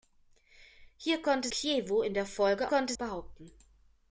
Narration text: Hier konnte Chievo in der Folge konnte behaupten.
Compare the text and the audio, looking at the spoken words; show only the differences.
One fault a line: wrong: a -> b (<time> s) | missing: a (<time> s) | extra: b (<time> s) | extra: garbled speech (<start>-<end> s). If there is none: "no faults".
no faults